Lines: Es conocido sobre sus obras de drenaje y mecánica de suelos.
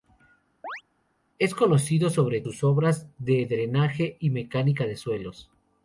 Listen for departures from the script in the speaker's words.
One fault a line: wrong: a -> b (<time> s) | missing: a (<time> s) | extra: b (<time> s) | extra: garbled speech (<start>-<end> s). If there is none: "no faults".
no faults